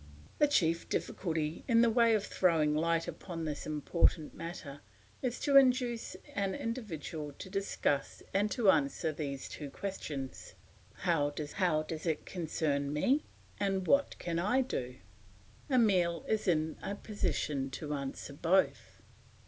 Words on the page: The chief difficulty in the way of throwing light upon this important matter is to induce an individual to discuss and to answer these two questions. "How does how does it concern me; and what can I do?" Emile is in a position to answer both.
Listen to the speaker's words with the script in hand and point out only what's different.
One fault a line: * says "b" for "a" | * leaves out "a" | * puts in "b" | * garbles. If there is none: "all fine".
all fine